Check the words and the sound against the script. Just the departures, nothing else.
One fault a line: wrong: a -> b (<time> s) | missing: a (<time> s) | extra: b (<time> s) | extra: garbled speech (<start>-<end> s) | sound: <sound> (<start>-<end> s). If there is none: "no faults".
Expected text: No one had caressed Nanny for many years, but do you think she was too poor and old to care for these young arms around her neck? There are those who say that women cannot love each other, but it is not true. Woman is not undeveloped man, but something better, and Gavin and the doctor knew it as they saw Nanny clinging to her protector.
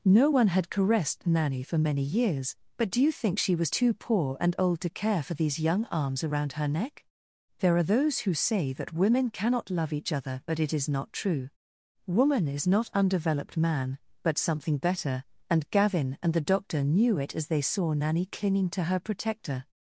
no faults